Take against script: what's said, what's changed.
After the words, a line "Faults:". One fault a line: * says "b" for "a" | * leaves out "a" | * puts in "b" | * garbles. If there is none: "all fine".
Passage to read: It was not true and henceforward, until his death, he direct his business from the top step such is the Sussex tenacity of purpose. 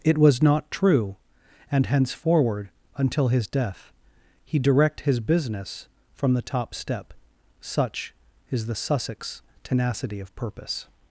It was not true and henceforward, until his death, he direct his business from the top step such is the Sussex tenacity of purpose.
Faults:
all fine